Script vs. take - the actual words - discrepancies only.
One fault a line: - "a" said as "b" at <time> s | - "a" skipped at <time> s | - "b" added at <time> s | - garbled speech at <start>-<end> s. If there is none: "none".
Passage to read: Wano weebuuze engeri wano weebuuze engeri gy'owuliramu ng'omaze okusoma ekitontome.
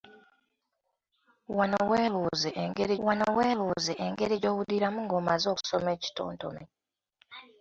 none